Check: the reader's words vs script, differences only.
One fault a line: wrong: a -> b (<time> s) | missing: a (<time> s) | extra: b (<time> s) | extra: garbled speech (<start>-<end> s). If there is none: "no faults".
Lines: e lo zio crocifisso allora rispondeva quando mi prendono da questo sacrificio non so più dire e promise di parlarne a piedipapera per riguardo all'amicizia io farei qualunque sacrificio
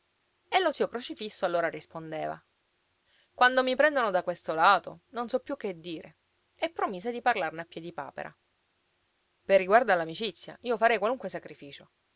wrong: sacrificio -> lato (4.5 s)
extra: che (5.6 s)